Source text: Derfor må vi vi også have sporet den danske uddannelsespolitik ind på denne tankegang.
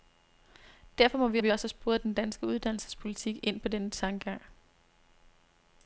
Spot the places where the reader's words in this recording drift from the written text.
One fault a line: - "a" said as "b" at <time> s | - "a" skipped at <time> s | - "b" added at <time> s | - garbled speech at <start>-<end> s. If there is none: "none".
none